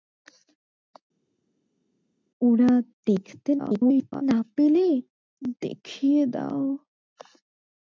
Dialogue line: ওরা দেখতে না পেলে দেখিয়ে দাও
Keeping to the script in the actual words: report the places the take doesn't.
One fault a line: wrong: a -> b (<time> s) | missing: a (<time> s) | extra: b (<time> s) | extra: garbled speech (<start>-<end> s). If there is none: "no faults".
extra: garbled speech (3.6-4.2 s)